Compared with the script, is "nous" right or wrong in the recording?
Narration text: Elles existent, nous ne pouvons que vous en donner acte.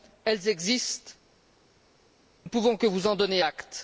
wrong